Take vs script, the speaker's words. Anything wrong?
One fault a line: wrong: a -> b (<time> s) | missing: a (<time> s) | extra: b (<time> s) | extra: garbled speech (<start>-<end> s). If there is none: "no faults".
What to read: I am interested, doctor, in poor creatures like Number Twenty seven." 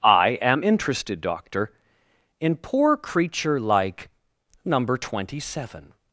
wrong: creatures -> creature (3.0 s)